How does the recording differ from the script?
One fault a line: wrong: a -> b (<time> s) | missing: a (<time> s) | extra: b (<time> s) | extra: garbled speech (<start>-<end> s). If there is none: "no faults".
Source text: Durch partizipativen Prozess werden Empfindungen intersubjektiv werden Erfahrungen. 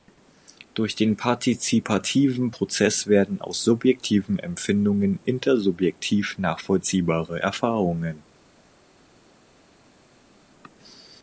extra: den (0.9 s)
extra: aus subjektiven (3.4 s)
wrong: werden -> nachvollziehbare (6.4 s)